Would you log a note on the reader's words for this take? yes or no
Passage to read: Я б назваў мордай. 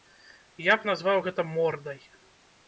yes